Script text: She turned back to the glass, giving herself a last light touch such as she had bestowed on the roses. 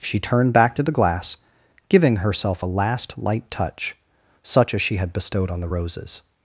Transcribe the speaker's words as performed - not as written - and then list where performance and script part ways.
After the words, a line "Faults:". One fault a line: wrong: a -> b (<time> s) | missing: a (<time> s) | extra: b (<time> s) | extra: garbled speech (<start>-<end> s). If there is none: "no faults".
She turned back to the glass, giving herself a last light touch such as she had bestowed on the roses.
Faults:
no faults